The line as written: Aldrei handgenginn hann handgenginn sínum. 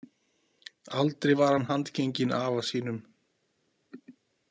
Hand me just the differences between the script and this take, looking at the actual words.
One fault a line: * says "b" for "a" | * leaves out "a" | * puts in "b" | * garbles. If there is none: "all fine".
* says "var" for "handgenginn"
* puts in "afa"